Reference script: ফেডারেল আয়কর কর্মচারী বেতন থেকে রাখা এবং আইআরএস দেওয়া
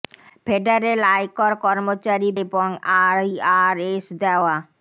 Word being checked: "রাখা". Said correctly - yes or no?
no